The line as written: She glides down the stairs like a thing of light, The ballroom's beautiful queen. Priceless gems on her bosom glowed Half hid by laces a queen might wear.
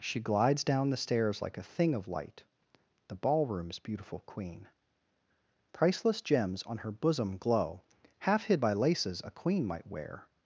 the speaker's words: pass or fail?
fail